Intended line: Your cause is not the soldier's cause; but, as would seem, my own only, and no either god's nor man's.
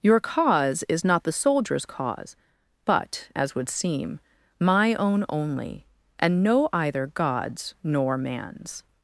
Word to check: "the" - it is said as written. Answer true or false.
true